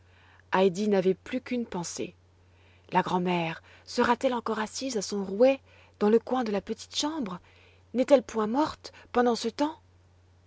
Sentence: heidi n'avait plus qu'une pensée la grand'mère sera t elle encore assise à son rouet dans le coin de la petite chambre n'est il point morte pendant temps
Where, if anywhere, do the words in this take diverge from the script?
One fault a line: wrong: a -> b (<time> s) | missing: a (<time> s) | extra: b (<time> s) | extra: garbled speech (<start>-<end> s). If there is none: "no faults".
wrong: il -> elle (8.1 s)
extra: ce (9.4 s)